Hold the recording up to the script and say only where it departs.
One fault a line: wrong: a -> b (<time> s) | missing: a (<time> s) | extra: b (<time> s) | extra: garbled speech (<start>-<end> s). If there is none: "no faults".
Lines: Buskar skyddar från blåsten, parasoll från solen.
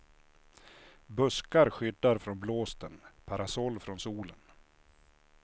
no faults